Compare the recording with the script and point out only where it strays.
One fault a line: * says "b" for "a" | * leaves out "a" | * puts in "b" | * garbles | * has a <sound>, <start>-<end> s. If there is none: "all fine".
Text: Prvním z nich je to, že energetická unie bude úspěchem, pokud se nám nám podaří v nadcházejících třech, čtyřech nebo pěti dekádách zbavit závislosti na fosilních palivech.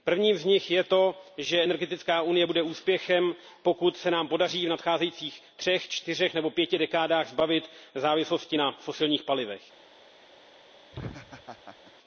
* leaves out "nám"
* has a laugh, 10.9-11.9 s